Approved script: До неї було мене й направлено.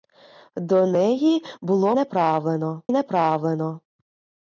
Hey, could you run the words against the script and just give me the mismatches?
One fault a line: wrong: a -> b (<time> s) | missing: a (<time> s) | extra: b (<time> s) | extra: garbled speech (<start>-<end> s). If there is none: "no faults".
wrong: мене -> направлено (1.9 s)